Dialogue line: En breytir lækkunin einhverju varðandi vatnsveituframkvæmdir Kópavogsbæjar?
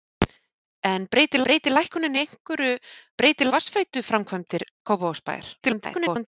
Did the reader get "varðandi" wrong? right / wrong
wrong